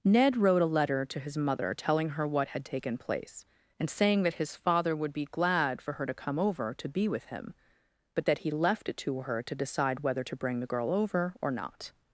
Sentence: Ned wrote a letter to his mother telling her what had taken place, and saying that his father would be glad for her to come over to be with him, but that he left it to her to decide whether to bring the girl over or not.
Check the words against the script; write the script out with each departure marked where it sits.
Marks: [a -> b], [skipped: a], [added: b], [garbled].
Ned wrote a letter to his mother telling her what had taken place, and saying that his father would be glad for her to come over to be with him, but that he left it to her to decide whether to bring the girl over or not.